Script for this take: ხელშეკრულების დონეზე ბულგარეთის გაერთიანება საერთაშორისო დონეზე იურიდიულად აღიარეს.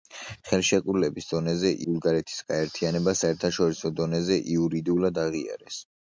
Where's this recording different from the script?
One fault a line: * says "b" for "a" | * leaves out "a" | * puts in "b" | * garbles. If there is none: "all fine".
all fine